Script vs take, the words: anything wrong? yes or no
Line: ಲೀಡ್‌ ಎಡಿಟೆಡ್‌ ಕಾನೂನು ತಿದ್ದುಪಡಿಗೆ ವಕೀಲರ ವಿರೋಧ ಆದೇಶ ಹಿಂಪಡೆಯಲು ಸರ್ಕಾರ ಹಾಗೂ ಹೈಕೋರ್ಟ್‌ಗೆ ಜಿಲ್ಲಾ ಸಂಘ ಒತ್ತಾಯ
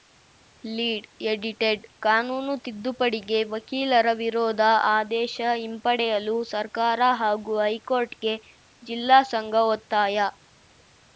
no